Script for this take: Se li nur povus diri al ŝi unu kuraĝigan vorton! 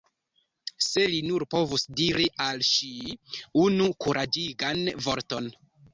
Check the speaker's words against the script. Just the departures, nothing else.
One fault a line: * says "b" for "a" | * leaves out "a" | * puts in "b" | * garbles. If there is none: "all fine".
all fine